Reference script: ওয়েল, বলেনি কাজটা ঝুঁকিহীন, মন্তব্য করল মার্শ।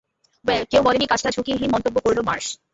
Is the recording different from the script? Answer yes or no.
yes